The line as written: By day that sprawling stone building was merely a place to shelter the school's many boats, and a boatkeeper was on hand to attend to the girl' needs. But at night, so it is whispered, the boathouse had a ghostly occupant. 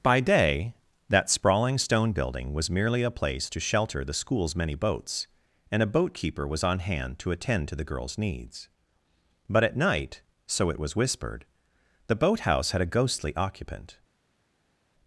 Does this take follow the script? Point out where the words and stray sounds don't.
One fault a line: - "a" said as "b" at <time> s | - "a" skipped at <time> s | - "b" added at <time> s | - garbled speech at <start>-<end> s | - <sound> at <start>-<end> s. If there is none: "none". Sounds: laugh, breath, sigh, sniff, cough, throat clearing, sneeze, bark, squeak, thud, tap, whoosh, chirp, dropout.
- "girl" said as "girls" at 7.8 s
- "is" said as "was" at 10.8 s